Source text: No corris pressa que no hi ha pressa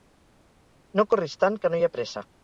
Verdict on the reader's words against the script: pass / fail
fail